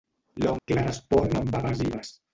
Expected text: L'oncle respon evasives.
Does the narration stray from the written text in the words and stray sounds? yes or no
yes